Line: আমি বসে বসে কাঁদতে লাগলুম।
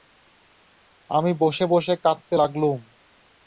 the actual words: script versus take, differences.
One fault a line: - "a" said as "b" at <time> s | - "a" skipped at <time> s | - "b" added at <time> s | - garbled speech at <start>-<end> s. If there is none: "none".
none